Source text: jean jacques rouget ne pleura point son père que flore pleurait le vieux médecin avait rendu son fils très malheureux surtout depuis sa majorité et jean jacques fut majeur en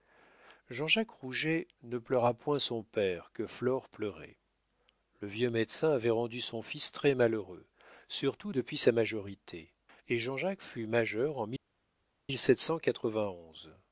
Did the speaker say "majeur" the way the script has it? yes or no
yes